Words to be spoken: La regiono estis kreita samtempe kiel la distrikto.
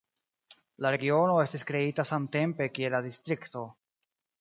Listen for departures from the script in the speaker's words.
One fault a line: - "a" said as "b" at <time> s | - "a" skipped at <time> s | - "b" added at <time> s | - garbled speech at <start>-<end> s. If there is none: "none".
none